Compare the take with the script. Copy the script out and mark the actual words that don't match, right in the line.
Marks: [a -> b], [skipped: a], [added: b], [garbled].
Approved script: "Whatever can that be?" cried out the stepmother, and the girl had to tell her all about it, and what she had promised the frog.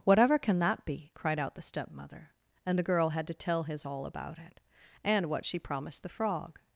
"Whatever can that be?" cried out the stepmother, and the girl had to tell [her -> his] all about it, and what she [skipped: had] promised the frog.